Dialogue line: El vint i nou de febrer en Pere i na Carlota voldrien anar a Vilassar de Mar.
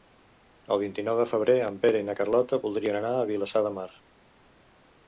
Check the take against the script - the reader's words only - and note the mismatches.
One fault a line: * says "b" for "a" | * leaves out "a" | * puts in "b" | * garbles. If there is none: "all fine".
all fine